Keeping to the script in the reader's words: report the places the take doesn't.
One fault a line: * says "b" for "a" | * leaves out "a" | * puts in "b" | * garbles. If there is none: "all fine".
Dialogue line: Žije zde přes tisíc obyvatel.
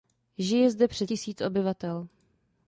all fine